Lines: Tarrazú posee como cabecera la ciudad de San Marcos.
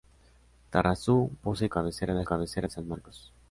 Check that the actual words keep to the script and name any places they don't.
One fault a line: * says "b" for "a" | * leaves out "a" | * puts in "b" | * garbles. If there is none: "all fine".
* leaves out "como"
* says "cabecera" for "ciudad"